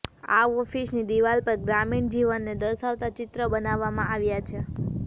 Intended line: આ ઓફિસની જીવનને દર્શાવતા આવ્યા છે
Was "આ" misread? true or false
false